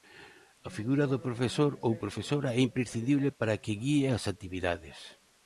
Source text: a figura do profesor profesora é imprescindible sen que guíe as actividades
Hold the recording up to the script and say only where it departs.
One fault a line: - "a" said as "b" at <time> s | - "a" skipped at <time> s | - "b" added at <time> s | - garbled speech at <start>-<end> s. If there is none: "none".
- "ou" added at 1.9 s
- "sen" said as "para" at 3.4 s